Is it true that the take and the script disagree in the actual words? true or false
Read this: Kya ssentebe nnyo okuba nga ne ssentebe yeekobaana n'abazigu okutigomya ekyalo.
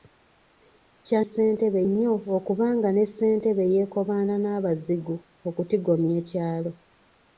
false